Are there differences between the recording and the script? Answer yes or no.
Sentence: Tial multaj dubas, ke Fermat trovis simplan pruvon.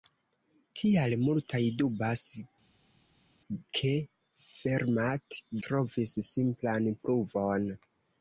no